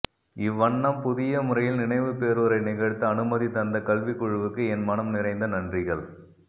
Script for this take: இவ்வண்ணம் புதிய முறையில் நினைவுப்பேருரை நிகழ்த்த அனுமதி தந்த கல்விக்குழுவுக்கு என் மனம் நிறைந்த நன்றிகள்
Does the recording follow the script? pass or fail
pass